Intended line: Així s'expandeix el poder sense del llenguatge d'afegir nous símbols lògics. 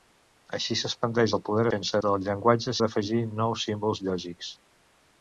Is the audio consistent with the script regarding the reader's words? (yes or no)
yes